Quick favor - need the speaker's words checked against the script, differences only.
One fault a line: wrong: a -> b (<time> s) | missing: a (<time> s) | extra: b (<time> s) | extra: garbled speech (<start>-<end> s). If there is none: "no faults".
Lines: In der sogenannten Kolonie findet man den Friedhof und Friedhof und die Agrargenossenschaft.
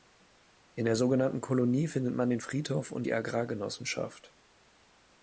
missing: Friedhof und (3.1 s)